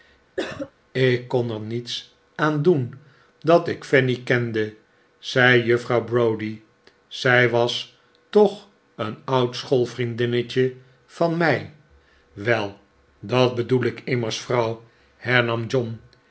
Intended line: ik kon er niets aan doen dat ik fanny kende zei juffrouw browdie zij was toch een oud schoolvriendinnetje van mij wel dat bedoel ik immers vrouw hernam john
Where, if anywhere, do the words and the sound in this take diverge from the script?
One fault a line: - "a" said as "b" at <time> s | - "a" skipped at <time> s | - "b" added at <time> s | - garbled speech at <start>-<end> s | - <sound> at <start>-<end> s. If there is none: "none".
- cough at 0.4-0.7 s